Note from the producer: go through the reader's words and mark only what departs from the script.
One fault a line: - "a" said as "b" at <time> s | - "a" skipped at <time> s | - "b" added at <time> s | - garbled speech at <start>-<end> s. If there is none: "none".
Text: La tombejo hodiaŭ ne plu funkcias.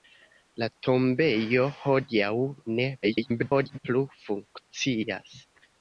- garbled speech at 3.0-3.8 s